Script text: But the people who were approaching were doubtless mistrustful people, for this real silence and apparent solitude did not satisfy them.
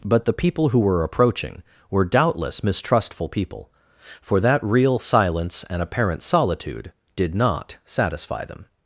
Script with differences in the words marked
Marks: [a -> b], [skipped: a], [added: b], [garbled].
But the people who were approaching were doubtless mistrustful people, for [this -> that] real silence and apparent solitude did not satisfy them.